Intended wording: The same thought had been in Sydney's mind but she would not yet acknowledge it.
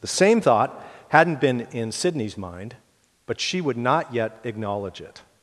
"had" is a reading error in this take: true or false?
true